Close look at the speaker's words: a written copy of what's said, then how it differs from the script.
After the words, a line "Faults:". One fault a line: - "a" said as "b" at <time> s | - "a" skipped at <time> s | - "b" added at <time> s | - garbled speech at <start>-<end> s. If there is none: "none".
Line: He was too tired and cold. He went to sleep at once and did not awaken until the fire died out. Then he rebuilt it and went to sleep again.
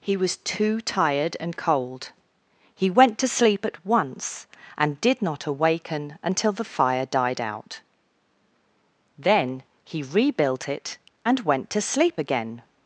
He was too tired and cold. He went to sleep at once and did not awaken until the fire died out. Then he rebuilt it and went to sleep again.
Faults:
none